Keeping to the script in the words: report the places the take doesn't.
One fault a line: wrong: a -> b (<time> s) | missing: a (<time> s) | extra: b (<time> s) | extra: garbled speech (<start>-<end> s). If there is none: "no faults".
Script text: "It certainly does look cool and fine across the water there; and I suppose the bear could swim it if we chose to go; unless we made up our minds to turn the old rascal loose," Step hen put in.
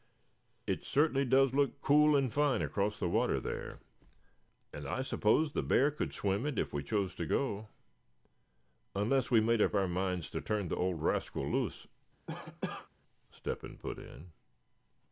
no faults